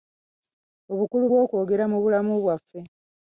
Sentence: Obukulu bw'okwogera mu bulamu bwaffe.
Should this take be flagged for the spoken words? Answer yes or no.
no